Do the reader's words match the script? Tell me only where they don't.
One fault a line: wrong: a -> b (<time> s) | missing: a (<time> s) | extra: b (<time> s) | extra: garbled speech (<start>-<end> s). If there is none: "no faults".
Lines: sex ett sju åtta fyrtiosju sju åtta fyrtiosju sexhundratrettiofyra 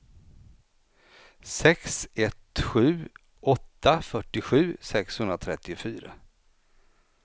missing: sju åtta fyrtiosju (4.8 s)